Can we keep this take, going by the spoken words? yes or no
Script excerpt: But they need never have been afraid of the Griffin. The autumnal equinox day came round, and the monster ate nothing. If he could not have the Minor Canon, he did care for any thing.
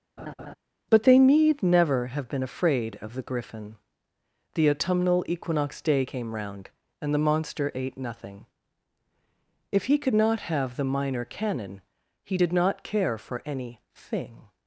no